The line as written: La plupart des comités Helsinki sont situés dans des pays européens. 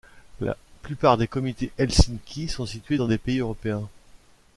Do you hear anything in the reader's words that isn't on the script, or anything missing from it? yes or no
no